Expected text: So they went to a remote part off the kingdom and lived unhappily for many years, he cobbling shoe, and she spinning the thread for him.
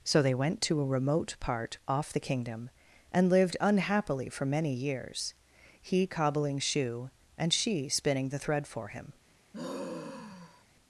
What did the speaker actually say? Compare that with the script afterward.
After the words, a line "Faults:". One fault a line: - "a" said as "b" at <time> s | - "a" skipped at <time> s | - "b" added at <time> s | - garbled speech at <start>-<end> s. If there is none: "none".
So they went to a remote part off the kingdom and lived unhappily for many years, he cobbling shoe, and she spinning the thread for him.
Faults:
none